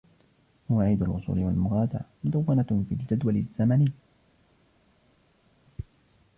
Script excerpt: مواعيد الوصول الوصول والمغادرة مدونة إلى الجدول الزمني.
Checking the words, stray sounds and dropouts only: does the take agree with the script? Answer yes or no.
no